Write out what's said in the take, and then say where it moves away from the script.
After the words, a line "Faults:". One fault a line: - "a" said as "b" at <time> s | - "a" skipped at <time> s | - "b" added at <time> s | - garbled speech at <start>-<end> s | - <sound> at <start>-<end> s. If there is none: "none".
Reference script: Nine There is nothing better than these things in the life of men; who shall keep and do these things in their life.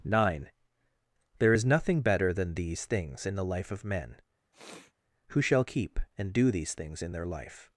Nine There is nothing better than these things in the life of men; who shall keep and do these things in their life.
Faults:
- sniff at 4.5-4.9 s